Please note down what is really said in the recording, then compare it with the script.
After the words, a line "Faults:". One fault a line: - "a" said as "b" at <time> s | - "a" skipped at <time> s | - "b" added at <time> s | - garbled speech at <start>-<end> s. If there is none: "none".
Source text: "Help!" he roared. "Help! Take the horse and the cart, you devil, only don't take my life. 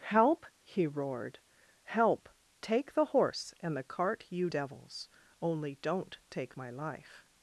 "Help!" he roared. "Help! Take the horse and the cart, you devils, only don't take my life.
Faults:
- "devil" said as "devils" at 4.4 s